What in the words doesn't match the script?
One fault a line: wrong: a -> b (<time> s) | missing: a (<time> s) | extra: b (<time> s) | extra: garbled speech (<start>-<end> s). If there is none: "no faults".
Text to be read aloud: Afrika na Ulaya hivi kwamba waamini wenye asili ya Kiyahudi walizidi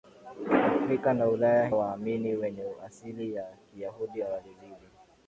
missing: hivi kwamba (1.7 s)